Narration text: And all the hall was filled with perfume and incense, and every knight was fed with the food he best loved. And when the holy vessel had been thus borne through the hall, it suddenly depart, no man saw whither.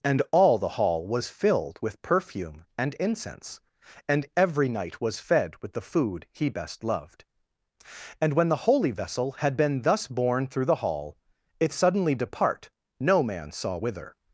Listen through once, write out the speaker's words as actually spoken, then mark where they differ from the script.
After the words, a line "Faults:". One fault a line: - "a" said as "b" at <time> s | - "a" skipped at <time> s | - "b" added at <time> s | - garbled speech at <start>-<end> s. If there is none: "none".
And all the hall was filled with perfume and incense, and every knight was fed with the food he best loved. And when the holy vessel had been thus borne through the hall, it suddenly depart, no man saw whither.
Faults:
none